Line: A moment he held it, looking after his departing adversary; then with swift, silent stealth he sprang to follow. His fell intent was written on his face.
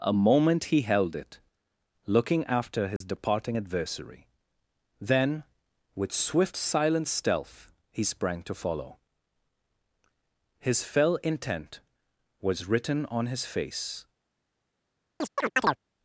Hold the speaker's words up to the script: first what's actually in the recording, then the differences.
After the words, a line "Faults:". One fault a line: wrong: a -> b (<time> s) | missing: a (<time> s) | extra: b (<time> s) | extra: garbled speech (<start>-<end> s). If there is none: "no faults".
A moment he held it, looking after his departing adversary; then with swift, silent stealth he sprang to follow. His fell intent was written on his face.
Faults:
no faults